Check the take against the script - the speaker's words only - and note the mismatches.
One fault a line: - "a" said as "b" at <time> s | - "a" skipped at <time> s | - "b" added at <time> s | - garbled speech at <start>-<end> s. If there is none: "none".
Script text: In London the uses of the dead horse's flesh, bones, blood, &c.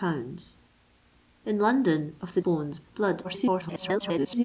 - "the uses" skipped at 2.1 s
- "dead horse's flesh" skipped at 2.4 s
- garbled speech at 3.2-4.4 s